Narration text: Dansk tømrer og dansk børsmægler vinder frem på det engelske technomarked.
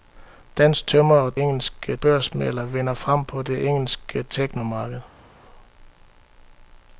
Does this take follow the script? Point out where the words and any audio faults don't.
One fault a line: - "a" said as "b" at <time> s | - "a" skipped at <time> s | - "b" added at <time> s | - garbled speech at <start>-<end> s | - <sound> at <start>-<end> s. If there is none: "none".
- "dansk" said as "engelske" at 1.4 s